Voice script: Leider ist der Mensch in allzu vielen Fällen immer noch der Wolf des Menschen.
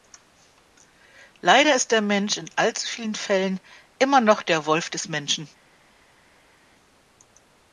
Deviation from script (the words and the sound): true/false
false